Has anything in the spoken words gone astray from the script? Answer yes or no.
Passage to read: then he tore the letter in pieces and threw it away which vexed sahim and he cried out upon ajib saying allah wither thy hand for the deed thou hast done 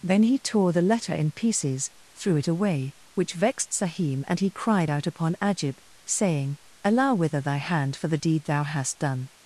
yes